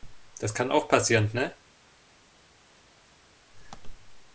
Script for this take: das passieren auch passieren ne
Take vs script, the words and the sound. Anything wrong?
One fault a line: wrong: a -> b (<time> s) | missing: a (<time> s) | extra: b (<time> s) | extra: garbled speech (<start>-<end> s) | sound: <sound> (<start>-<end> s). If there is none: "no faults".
wrong: passieren -> kann (0.6 s)